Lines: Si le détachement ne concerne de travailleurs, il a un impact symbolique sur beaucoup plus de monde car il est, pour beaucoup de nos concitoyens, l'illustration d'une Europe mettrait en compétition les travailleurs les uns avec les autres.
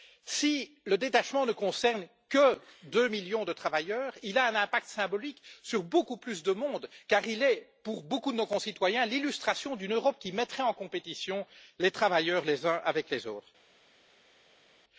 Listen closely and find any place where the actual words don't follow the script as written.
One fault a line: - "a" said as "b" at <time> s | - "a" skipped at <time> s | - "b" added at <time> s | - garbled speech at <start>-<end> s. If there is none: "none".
- "que deux millions" added at 2.3 s
- "qui" added at 10.2 s